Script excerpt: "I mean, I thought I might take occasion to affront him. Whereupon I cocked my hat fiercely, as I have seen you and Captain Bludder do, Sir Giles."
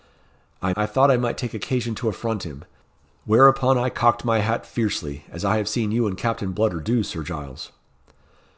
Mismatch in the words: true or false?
true